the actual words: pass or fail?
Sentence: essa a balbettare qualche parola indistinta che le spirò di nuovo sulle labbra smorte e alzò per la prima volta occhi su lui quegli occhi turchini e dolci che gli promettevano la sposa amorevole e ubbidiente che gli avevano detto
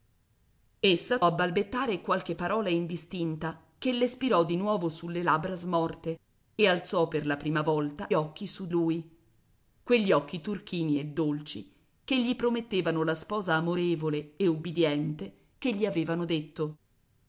pass